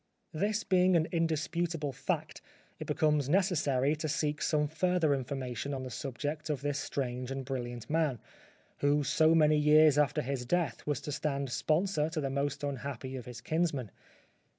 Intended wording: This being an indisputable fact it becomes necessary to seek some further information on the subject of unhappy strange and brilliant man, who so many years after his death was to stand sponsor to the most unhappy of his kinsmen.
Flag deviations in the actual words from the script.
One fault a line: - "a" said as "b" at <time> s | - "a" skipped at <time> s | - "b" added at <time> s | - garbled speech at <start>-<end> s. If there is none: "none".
- "unhappy" said as "this" at 6.6 s